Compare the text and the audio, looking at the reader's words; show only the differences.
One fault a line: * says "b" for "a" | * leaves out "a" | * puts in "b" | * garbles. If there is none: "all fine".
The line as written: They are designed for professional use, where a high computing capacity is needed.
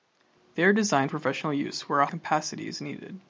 * leaves out "for"
* leaves out "high computing"